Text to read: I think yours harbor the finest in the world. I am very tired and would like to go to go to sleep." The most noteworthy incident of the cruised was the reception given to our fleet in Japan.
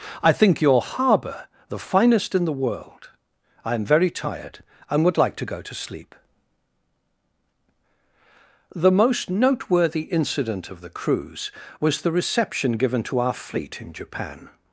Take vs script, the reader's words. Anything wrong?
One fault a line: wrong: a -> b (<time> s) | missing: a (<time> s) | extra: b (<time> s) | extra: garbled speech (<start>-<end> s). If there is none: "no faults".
wrong: yours -> your (0.6 s)
missing: go to (5.7 s)
wrong: cruised -> cruise (10.9 s)